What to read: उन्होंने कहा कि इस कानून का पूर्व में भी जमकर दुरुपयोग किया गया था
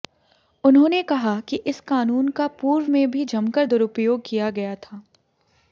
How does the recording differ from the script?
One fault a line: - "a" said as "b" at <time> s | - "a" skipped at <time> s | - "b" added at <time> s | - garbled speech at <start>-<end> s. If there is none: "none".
none